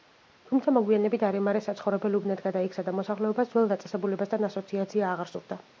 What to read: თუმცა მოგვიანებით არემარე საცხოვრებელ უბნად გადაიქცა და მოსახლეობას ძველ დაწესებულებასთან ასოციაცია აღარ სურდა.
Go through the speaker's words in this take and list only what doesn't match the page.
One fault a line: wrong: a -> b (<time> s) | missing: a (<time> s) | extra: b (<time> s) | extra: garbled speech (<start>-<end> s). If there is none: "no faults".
no faults